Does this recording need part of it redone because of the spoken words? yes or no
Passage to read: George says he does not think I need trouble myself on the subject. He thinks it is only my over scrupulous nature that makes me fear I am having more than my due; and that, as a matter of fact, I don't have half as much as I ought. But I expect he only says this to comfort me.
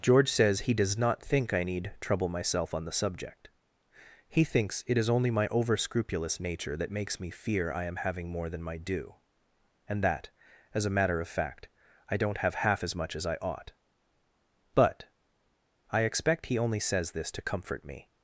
no